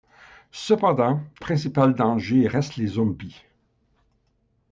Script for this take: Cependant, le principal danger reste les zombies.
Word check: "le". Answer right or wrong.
wrong